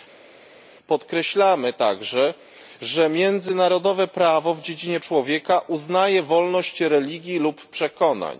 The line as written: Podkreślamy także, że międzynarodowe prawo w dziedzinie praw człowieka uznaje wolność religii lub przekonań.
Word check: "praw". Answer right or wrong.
wrong